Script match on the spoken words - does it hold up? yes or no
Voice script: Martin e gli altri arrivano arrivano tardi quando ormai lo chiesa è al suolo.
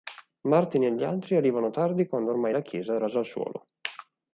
no